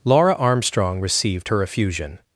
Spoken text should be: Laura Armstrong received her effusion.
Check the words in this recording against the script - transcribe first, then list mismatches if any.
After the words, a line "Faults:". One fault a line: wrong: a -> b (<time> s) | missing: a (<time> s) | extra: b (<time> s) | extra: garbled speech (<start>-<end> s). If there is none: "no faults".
Laura Armstrong received her effusion.
Faults:
no faults